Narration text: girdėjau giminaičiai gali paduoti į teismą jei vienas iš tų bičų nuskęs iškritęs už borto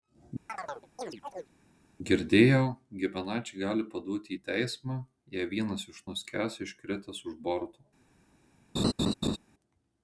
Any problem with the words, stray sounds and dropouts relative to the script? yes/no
yes